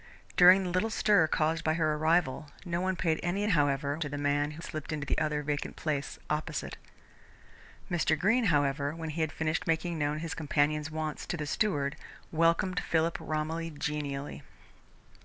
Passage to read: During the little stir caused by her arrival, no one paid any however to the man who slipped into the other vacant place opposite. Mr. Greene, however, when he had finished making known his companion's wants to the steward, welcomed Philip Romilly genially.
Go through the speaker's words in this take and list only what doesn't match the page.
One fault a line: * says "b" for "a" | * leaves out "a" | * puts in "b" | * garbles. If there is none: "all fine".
all fine